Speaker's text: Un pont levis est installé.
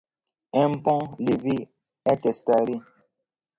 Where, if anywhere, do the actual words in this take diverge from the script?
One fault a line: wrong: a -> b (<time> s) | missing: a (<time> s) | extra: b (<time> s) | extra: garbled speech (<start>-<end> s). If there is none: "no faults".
no faults